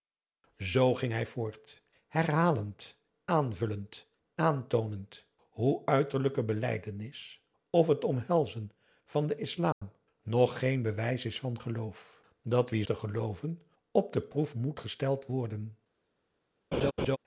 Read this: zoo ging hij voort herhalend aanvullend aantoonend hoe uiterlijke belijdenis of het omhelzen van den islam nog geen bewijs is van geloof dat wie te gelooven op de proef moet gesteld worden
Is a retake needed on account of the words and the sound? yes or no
yes